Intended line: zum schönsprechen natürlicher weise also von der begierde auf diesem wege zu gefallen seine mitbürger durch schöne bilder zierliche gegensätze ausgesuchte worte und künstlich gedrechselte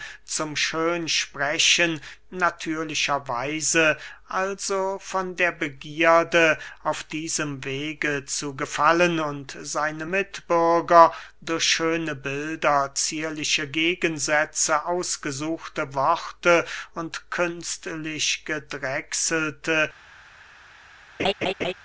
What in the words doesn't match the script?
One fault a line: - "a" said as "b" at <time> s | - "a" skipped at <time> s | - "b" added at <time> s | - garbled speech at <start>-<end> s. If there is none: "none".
- "und" added at 9.2 s